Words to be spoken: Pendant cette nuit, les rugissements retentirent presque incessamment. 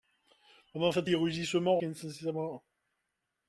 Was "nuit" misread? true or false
true